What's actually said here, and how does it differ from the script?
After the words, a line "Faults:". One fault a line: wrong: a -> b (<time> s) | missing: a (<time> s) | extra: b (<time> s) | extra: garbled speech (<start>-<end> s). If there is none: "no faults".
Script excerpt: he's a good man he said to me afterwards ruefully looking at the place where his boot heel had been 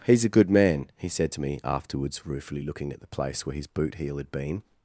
he's a good man he said to me afterwards ruefully looking at the place where his boot heel had been
Faults:
no faults